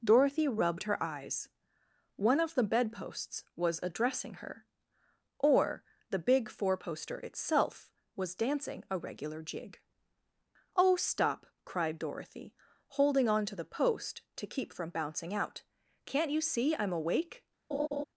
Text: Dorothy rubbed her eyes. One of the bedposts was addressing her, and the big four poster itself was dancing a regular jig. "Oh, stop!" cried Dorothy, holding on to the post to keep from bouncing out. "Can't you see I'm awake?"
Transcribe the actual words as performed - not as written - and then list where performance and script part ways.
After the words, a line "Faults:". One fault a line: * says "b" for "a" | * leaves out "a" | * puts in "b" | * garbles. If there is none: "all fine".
Dorothy rubbed her eyes. One of the bedposts was addressing her, or the big four poster itself was dancing a regular jig. "Oh, stop!" cried Dorothy, holding on to the post to keep from bouncing out. "Can't you see I'm awake?"
Faults:
* says "or" for "and"